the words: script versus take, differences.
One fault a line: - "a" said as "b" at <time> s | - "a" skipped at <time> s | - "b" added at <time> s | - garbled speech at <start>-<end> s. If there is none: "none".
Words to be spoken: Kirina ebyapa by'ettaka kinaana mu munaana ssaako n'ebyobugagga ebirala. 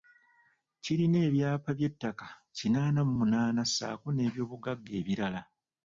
none